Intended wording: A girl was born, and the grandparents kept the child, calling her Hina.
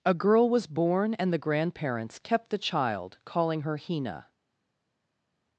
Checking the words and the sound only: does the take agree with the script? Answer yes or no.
yes